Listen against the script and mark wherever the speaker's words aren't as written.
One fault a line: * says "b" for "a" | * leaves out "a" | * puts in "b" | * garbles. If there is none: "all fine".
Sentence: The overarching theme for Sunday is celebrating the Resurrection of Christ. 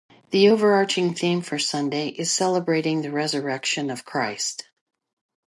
all fine